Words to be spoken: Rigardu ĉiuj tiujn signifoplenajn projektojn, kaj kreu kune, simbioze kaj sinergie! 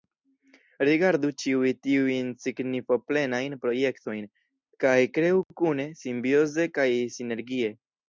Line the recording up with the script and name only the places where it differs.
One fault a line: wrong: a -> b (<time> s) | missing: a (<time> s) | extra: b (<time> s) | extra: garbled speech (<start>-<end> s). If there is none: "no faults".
no faults